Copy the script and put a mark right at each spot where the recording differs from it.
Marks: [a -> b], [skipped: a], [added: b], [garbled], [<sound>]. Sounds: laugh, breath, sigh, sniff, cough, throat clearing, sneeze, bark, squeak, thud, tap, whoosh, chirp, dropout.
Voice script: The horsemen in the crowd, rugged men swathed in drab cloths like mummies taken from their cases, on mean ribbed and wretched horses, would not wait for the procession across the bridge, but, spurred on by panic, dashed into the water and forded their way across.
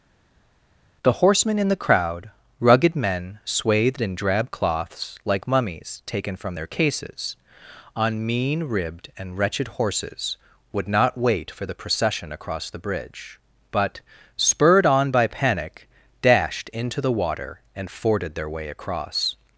The horsemen in the crowd, rugged men swathed in drab cloths like mummies taken from their cases, on mean ribbed and wretched horses, would not wait for the procession across the bridge, but, spurred on by panic, dashed into the water and forded their way across.